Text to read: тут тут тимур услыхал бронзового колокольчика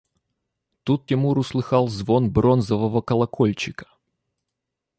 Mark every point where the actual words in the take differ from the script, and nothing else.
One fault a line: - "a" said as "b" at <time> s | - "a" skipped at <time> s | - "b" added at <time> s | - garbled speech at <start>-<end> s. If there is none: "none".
- "тут" skipped at 1.1 s
- "звон" added at 1.9 s